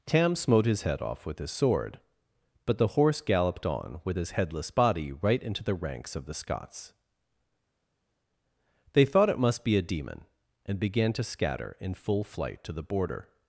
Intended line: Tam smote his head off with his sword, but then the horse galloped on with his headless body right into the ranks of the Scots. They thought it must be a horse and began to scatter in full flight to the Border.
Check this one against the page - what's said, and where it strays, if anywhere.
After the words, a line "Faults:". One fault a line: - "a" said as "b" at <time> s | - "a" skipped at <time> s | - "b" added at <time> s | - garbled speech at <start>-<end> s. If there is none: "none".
Tam smote his head off with his sword, but the horse galloped on with his headless body right into the ranks of the Scots. They thought it must be a demon and began to scatter in full flight to the Border.
Faults:
- "then" skipped at 2.8 s
- "horse" said as "demon" at 9.8 s